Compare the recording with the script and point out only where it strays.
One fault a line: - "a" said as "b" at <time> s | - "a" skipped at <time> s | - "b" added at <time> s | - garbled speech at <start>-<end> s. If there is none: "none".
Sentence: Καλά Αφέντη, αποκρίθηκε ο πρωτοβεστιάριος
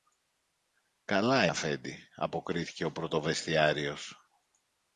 none